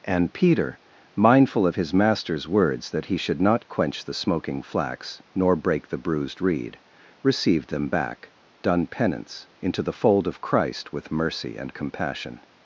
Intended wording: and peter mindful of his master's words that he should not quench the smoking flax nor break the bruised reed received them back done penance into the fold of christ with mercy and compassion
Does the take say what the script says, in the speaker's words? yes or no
yes